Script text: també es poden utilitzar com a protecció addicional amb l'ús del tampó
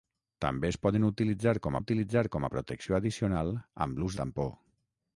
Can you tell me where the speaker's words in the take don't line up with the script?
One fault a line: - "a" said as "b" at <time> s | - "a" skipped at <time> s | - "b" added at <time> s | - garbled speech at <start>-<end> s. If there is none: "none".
- "utilitzar com" added at 1.8 s
- "del" skipped at 4.2 s